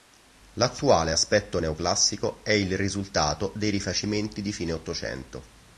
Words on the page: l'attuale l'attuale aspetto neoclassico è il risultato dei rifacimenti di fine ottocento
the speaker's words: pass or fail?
fail